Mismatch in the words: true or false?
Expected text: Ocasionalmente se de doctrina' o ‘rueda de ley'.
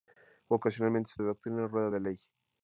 false